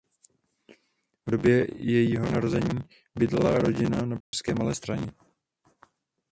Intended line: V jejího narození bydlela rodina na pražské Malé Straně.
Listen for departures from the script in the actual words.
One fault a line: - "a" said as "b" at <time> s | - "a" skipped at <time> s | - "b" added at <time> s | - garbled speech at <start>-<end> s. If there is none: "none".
- "době" added at 1.3 s